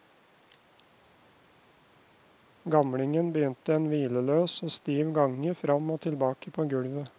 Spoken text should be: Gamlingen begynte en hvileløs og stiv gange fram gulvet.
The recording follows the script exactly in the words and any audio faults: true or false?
false